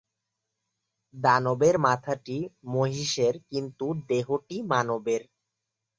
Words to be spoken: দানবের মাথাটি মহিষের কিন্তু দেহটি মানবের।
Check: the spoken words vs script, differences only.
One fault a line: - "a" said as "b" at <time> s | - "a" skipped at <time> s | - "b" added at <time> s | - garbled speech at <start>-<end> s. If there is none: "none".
none